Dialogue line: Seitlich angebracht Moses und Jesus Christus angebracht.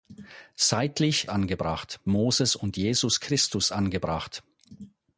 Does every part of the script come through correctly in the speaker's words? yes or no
yes